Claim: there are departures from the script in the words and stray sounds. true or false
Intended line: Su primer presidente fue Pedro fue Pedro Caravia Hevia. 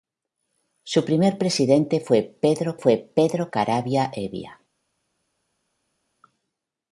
false